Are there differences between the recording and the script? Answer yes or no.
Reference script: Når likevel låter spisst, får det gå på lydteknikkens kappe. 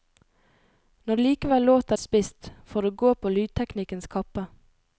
no